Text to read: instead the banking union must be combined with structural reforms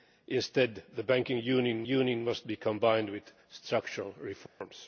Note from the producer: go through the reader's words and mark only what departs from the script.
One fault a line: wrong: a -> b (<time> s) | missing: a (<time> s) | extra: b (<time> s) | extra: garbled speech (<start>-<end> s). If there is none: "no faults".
extra: union (1.9 s)